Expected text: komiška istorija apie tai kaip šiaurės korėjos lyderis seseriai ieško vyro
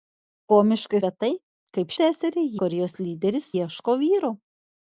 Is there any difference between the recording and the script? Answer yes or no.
yes